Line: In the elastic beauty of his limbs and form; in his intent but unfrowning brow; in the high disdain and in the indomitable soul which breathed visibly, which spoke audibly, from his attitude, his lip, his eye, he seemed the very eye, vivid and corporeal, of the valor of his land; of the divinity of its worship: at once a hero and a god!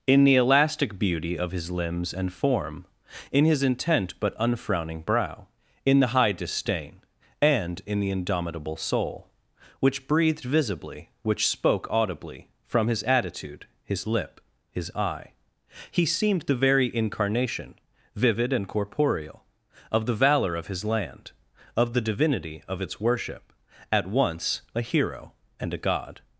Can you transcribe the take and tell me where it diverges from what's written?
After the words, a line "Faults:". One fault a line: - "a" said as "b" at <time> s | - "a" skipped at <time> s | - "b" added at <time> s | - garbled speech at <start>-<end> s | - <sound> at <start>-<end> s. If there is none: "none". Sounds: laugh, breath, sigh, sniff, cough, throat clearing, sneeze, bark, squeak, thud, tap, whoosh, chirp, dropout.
In the elastic beauty of his limbs and form; in his intent but unfrowning brow; in the high disdain and in the indomitable soul which breathed visibly, which spoke audibly, from his attitude, his lip, his eye, he seemed the very incarnation, vivid and corporeal, of the valor of his land; of the divinity of its worship: at once a hero and a god!
Faults:
- "eye" said as "incarnation" at 16.9 s